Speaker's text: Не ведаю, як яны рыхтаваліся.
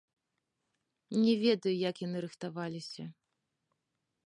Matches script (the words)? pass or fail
pass